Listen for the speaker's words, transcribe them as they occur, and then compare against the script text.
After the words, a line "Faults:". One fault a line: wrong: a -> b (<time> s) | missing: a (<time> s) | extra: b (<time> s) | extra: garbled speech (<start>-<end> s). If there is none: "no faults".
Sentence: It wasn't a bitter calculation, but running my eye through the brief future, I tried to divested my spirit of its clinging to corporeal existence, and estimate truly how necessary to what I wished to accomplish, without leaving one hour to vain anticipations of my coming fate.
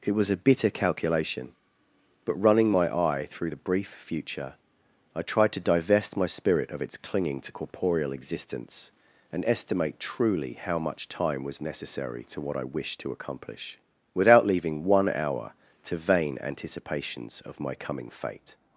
It was a bitter calculation, but running my eye through the brief future, I tried to divest my spirit of its clinging to corporeal existence, and estimate truly how much time was necessary to what I wished to accomplish, without leaving one hour to vain anticipations of my coming fate.
Faults:
wrong: wasn't -> was (0.1 s)
wrong: divested -> divest (5.6 s)
extra: much time was (10.8 s)